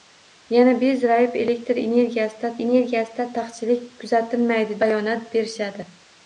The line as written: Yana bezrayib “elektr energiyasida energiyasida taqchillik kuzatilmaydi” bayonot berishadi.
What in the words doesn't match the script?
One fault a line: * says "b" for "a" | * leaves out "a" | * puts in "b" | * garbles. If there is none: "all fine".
all fine